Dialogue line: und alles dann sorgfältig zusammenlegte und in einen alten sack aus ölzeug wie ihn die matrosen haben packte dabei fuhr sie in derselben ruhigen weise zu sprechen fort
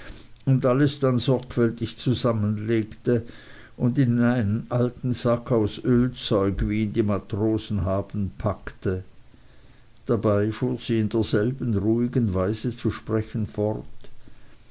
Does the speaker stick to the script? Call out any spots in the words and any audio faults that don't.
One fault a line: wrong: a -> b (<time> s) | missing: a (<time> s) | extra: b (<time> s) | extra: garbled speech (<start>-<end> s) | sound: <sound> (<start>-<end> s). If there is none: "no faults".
no faults